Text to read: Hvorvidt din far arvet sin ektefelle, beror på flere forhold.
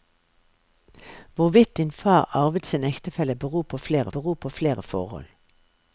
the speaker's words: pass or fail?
fail